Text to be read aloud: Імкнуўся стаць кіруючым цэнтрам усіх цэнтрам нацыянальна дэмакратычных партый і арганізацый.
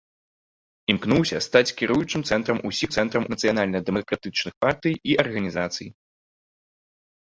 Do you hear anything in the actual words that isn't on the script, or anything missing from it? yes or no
no